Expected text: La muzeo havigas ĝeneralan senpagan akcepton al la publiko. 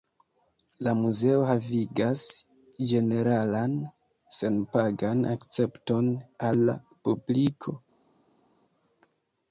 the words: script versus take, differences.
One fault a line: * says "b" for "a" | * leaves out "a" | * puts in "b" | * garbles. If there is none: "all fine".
all fine